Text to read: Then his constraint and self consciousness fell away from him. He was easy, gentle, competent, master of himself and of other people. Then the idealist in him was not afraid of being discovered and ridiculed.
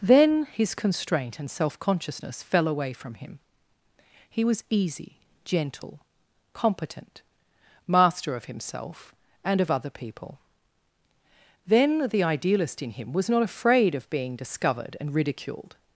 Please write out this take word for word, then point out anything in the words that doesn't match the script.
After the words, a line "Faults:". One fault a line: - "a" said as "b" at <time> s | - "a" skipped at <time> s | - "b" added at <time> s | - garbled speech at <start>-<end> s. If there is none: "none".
Then his constraint and self consciousness fell away from him. He was easy, gentle, competent, master of himself and of other people. Then the idealist in him was not afraid of being discovered and ridiculed.
Faults:
none